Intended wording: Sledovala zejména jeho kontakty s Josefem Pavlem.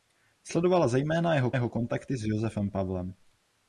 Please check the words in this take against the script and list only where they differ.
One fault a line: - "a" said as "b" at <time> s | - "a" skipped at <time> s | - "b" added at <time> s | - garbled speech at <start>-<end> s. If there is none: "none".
- "jeho" added at 1.5 s